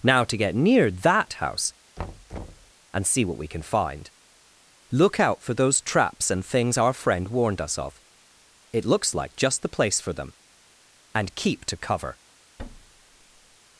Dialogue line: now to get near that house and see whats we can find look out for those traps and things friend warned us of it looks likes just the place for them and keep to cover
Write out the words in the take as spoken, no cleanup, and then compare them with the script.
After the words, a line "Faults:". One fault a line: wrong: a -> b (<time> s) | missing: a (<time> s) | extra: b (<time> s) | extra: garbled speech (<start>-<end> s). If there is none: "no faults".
now to get near that house and see what we can find look out for those traps and things our friend warned us of it looks like just the place for them and keep to cover
Faults:
wrong: whats -> what (3.3 s)
extra: our (6.8 s)
wrong: likes -> like (9.1 s)